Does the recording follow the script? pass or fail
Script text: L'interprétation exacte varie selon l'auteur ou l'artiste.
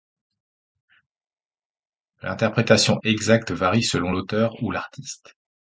pass